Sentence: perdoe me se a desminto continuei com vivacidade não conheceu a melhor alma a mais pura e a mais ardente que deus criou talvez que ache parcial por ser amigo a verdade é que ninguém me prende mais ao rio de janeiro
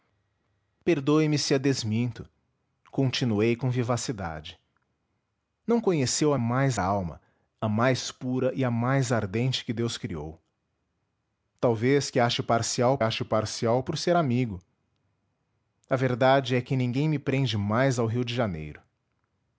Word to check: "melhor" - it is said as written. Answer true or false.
false